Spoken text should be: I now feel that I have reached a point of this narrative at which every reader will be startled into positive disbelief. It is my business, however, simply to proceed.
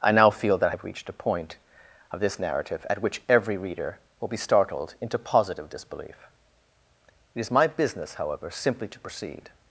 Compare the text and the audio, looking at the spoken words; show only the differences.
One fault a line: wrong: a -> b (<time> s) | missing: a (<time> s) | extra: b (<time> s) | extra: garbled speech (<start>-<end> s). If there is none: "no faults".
no faults